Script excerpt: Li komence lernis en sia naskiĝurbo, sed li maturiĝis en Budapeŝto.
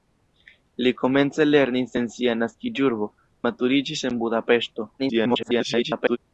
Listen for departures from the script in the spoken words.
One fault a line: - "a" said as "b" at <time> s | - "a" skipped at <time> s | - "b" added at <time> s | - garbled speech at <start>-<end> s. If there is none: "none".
- "sed li" skipped at 3.1 s
- garbled speech at 5.0-6.2 s